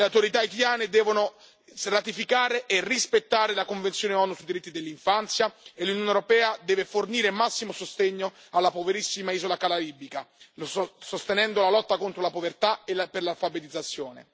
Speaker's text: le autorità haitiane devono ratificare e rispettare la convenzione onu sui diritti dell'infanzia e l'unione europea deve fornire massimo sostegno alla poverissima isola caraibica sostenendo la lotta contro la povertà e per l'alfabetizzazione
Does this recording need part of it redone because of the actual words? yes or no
no